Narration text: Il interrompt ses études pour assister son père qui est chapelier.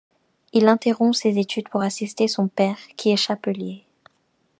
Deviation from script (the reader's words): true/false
false